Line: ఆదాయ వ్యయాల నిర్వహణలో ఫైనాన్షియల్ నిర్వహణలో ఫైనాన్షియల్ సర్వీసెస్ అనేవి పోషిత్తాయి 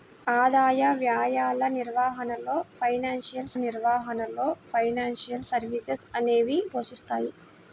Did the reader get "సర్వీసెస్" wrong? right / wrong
right